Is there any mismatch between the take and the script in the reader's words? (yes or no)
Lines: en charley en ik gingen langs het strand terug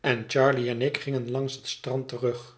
no